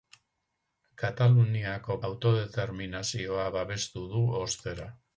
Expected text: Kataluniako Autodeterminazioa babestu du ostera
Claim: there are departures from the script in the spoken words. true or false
false